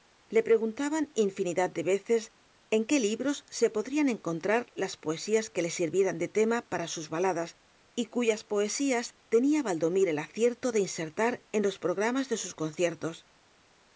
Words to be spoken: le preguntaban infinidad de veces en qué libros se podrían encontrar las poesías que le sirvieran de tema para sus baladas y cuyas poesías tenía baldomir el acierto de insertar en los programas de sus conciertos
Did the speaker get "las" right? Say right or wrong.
right